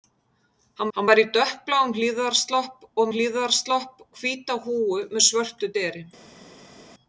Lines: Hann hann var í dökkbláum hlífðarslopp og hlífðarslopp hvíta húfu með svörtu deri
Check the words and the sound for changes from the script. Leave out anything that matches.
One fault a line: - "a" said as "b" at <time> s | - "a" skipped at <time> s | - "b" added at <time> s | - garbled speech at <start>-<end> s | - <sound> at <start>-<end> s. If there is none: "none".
none